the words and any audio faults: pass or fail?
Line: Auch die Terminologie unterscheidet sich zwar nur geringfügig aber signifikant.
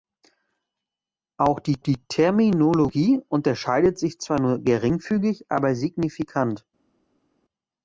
fail